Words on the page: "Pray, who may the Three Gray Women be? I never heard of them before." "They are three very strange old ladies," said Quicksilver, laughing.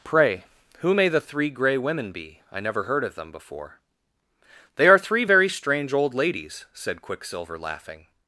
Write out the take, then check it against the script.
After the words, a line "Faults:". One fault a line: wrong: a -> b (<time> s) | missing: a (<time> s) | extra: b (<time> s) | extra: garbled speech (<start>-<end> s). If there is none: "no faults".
"Pray, who may the Three Gray Women be? I never heard of them before." "They are three very strange old ladies," said Quicksilver, laughing.
Faults:
no faults